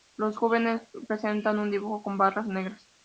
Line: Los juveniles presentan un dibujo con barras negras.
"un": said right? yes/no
yes